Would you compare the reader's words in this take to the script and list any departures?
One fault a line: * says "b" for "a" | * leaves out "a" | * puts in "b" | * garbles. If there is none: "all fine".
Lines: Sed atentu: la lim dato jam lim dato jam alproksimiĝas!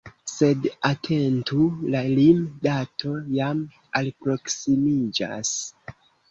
* leaves out "lim dato jam"